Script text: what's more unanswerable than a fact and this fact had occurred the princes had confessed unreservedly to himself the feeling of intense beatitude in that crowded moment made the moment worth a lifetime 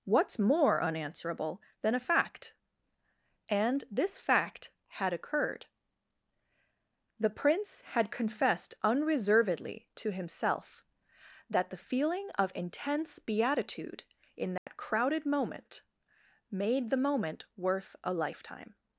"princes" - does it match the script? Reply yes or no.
no